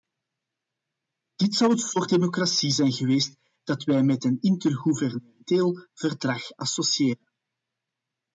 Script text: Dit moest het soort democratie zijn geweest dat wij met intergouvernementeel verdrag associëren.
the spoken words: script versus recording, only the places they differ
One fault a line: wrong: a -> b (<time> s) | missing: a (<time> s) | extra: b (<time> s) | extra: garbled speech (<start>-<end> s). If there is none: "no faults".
wrong: moest -> zou (1.6 s)
extra: een (4.2 s)